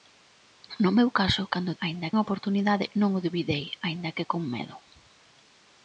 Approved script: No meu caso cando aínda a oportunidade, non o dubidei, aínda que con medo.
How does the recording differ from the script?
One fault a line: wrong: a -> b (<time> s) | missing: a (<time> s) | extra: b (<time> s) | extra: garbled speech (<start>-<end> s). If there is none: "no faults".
no faults